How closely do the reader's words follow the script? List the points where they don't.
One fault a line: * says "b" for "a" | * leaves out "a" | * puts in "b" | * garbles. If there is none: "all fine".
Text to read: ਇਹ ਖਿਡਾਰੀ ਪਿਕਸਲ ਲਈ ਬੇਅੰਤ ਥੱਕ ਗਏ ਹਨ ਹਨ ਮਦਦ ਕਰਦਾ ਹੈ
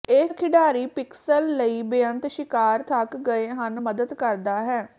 * puts in "ਸ਼ਿਕਾਰ"
* leaves out "ਹਨ"